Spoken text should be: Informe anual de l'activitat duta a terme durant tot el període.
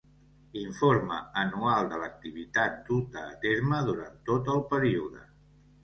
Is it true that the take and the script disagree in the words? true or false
false